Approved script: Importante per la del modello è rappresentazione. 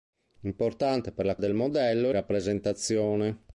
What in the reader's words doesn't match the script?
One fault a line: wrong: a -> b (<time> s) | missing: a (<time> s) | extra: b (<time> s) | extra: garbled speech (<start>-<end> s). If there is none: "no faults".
no faults